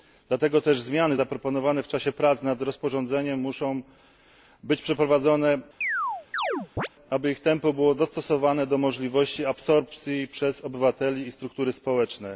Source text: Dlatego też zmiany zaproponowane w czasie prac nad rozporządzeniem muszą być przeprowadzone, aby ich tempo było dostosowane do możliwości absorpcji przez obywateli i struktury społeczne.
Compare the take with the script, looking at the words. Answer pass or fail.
pass